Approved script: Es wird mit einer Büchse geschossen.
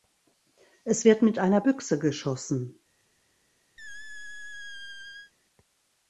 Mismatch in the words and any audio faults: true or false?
true